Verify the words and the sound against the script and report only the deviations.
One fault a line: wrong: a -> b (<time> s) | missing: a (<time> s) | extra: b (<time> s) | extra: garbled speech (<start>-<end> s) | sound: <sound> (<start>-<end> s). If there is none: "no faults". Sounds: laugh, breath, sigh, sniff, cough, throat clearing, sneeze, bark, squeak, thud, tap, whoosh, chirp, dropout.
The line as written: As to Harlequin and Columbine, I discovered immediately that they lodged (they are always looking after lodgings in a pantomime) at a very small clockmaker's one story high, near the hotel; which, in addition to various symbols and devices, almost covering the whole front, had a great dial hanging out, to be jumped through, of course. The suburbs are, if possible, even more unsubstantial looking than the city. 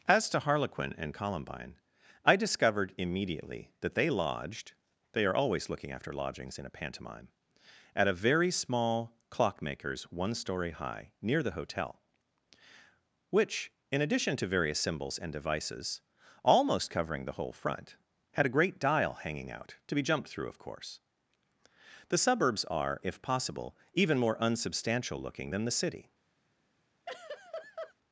sound: laugh (27.1-27.9 s)